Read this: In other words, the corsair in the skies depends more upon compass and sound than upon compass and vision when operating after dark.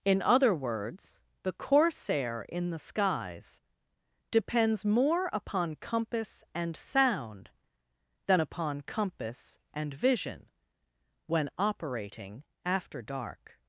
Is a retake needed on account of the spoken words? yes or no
no